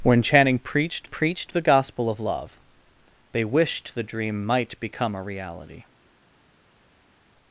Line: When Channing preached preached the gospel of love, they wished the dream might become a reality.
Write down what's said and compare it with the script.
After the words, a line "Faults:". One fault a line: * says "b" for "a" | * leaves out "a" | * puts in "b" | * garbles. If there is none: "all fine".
When Channing preached preached the gospel of love, they wished the dream might become a reality.
Faults:
all fine